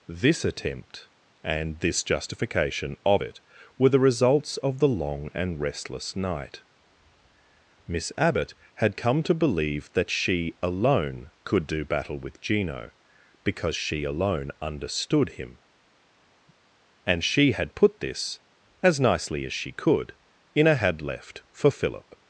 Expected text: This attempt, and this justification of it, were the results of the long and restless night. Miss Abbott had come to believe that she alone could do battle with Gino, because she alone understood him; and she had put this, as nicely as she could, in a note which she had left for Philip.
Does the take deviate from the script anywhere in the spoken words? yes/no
yes